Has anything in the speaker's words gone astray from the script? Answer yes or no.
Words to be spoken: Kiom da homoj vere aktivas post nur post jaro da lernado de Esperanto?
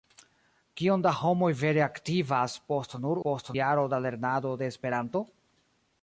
no